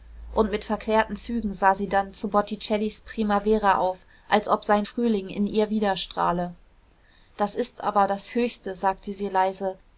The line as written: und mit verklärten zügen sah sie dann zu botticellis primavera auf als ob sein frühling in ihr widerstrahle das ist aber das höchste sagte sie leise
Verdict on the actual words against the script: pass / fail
pass